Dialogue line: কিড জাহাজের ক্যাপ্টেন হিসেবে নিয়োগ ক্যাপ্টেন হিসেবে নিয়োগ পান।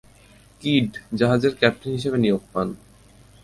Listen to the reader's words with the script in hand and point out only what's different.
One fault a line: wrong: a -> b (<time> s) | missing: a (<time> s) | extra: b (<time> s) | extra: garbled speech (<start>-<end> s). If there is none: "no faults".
missing: ক্যাপ্টেন হিসেবে নিয়োগ (2.4 s)